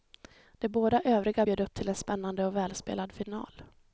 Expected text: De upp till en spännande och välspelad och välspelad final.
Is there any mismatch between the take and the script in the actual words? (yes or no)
yes